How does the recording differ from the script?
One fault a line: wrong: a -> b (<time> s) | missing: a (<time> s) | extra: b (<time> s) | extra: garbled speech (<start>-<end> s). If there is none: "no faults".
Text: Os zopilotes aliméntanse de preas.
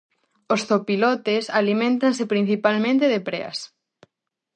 extra: principalmente (2.3 s)